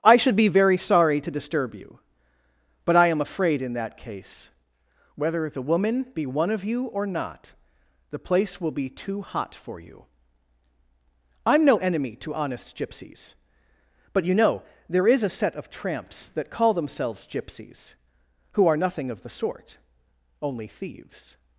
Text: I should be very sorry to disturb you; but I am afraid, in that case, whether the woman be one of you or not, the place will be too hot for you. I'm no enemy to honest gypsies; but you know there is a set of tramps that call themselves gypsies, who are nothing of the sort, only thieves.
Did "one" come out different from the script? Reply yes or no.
no